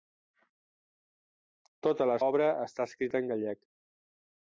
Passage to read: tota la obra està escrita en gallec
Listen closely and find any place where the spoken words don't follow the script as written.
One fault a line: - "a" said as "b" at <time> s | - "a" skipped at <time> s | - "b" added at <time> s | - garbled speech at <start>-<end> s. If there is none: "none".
none